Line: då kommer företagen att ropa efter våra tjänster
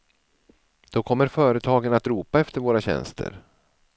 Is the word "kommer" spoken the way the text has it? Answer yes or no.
yes